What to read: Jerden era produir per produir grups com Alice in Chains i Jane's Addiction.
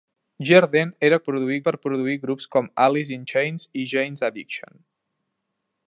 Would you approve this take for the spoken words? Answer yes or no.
yes